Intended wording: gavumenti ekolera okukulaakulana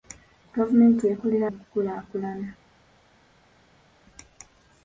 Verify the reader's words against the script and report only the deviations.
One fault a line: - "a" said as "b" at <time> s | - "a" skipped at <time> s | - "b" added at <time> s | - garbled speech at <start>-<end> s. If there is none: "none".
none